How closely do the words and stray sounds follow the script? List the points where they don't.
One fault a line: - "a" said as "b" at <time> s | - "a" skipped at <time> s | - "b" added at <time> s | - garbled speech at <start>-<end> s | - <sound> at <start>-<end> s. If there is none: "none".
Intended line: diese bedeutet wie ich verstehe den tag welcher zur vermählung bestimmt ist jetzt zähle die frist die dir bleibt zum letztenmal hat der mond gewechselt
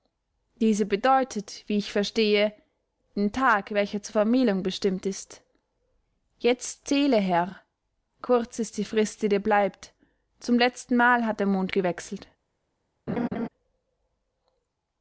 - "herr kurz ist" added at 7.2 s
- laugh at 13.1-13.5 s